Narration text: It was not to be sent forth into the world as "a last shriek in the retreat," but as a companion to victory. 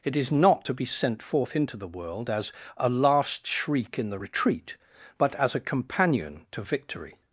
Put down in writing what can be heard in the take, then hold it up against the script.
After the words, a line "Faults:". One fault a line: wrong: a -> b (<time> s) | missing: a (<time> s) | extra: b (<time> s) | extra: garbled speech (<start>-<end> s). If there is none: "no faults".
It is not to be sent forth into the world as "a last shriek in the retreat," but as a companion to victory.
Faults:
wrong: was -> is (0.1 s)